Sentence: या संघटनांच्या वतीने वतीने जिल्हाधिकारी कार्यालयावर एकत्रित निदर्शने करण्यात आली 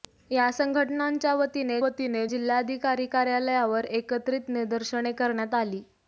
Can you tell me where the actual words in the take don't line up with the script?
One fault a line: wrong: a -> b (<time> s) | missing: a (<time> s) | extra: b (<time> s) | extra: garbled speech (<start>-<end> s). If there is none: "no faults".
no faults